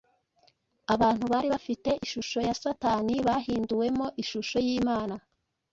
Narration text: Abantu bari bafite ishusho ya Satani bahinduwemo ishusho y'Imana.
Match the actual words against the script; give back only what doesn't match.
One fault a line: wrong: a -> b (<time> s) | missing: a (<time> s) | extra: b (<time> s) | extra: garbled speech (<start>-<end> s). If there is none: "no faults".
no faults